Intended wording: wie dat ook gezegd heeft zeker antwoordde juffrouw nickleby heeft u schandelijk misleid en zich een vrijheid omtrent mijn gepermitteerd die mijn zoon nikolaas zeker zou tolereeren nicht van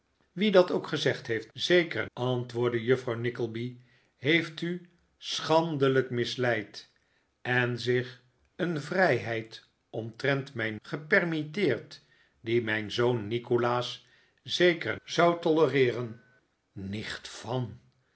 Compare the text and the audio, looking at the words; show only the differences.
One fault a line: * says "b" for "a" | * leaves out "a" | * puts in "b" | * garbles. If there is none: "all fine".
all fine